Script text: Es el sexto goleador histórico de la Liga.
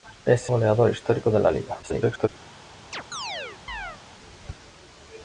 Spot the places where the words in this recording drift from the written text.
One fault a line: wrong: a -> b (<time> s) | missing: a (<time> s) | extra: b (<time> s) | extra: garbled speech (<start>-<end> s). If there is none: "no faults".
missing: el sexto (0.5 s)
extra: garbled speech (1.8-2.3 s)